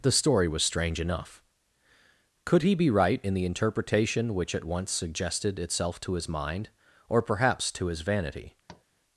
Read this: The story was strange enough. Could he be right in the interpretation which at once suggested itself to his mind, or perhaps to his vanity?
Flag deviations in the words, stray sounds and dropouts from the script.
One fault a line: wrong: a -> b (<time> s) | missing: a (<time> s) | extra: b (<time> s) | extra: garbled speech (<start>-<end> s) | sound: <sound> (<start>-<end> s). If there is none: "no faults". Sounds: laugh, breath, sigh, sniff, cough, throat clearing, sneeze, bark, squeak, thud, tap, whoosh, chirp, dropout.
sound: tap (8.7-8.8 s)